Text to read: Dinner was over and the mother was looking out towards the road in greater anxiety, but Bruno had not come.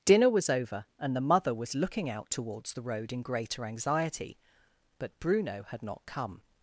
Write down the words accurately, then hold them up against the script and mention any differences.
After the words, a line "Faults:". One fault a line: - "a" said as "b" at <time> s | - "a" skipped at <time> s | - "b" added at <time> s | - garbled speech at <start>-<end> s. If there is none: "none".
Dinner was over and the mother was looking out towards the road in greater anxiety, but Bruno had not come.
Faults:
none